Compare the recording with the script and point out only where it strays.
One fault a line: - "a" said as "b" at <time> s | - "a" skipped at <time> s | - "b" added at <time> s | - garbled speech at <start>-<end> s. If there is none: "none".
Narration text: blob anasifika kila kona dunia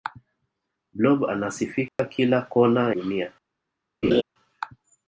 none